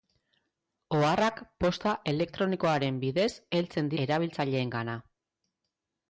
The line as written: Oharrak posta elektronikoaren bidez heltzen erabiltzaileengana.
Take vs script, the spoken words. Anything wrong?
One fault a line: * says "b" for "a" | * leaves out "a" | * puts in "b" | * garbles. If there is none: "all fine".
all fine